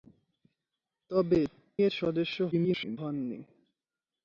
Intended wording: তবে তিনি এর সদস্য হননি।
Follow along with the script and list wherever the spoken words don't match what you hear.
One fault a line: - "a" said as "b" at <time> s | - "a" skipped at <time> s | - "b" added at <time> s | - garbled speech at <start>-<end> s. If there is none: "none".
- "তিনি" skipped at 1.4 s
- garbled speech at 2.5-3.0 s